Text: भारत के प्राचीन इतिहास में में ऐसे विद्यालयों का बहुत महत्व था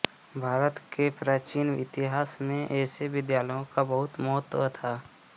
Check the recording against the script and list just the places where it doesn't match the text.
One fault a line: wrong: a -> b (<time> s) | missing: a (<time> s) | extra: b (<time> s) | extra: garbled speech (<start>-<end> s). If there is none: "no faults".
missing: में (2.7 s)